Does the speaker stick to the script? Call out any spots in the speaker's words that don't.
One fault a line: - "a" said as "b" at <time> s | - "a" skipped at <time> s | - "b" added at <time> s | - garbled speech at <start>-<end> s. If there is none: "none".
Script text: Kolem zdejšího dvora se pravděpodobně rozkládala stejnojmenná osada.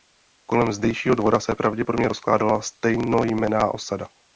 none